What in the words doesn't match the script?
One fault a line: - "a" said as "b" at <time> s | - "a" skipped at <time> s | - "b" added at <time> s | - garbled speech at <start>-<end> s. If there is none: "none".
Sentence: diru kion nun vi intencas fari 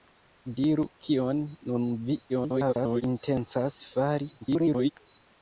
- garbled speech at 2.3-3.0 s
- garbled speech at 4.4-4.9 s